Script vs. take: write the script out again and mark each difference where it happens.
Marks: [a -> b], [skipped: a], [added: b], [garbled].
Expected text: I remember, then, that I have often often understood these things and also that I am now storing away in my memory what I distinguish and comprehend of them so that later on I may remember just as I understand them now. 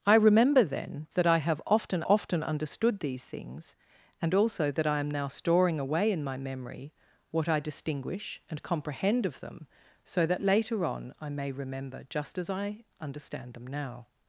I remember, then, that I have often often understood these things and also that I am now storing away in my memory what I distinguish and comprehend of them so that later on I may remember just as I understand them now.